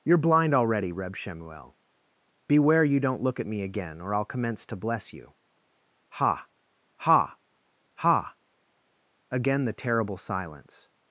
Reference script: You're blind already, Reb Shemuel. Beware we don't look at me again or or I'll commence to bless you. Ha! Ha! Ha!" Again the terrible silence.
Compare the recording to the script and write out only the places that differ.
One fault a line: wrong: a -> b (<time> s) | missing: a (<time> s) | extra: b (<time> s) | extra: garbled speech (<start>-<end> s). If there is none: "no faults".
wrong: we -> you (2.8 s)
missing: or (4.1 s)